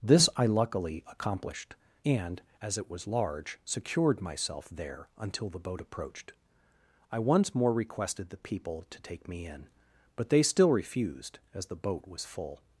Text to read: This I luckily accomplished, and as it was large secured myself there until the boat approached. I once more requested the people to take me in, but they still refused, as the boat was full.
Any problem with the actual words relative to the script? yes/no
no